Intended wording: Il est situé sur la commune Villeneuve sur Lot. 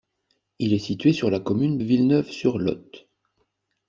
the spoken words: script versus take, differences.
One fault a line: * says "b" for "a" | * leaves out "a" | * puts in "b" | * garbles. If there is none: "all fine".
all fine